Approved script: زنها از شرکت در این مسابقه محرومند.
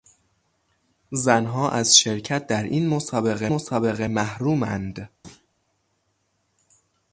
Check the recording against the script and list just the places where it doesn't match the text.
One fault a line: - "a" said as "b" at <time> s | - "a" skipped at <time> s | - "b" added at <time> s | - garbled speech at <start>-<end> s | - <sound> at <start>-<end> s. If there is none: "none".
- "مسابقه" added at 3.5 s
- thud at 5.2-5.5 s